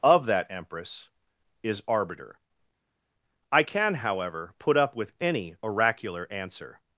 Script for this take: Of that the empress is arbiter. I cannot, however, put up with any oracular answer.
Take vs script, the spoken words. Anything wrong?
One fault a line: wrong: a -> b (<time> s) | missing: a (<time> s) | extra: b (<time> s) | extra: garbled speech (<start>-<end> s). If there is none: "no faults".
missing: the (0.5 s)
wrong: cannot -> can (3.6 s)